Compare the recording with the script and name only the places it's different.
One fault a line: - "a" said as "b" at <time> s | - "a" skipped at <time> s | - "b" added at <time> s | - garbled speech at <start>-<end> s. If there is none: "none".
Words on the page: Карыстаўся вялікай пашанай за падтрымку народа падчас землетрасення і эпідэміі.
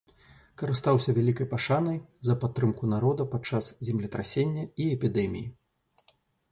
none